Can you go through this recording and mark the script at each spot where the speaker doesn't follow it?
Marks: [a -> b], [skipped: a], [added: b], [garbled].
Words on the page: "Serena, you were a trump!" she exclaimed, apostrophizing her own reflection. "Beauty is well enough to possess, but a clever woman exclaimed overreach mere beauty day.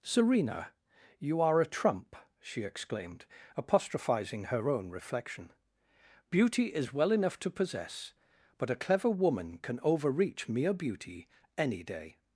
"Serena, you [were -> are] a trump!" she exclaimed, apostrophizing her own reflection. "Beauty is well enough to possess, but a clever woman [exclaimed -> can] overreach mere beauty [added: any] day.